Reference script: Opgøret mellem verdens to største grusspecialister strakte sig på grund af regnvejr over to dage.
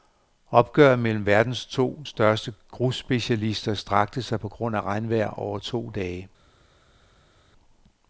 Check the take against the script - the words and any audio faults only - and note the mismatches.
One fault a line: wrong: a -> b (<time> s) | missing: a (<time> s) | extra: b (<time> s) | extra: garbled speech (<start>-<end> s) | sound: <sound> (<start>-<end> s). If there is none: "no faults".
no faults